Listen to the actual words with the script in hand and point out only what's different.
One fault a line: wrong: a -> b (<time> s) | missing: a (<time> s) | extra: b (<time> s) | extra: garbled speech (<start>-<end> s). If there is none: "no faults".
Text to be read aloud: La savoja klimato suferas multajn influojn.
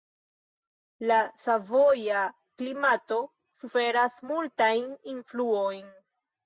no faults